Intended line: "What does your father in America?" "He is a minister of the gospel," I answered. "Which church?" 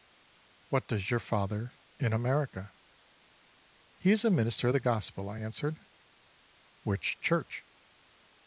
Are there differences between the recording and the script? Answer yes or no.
no